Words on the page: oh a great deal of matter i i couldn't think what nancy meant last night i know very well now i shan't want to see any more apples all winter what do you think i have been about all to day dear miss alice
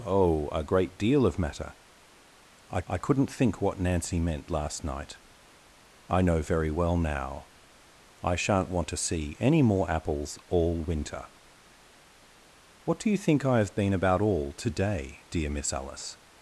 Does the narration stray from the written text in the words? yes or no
no